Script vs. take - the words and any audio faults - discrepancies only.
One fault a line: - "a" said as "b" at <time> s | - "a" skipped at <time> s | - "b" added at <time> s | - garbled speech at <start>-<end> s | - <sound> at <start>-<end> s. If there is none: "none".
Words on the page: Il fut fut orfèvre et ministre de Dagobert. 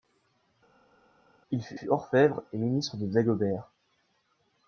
none